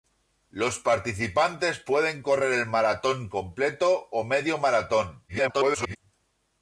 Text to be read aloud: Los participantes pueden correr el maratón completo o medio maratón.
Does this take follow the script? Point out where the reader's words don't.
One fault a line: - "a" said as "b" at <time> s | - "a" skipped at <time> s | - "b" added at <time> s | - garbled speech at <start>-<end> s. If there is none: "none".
- garbled speech at 5.3-6.0 s